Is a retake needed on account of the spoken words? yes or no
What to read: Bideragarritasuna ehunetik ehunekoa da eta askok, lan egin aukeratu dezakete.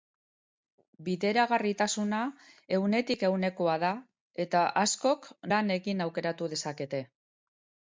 no